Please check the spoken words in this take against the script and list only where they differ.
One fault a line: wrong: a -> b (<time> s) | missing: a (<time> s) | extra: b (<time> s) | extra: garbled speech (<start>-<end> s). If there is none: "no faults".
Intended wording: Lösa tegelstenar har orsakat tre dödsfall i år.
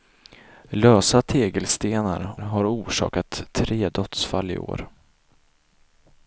no faults